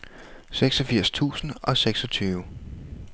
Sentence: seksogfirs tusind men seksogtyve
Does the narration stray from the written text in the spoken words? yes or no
yes